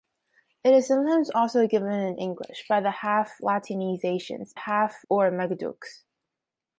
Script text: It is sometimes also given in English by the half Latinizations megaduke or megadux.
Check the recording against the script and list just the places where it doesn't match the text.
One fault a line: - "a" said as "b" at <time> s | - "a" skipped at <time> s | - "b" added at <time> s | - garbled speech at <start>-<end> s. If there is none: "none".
- "megaduke" said as "half" at 4.5 s